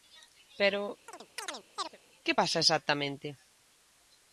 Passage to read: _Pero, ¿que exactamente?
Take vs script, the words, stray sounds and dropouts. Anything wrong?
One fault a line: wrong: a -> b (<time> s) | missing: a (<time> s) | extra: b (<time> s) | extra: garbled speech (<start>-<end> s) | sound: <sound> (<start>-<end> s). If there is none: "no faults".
sound: chirp (1.1-2.0 s)
extra: pasa (2.4 s)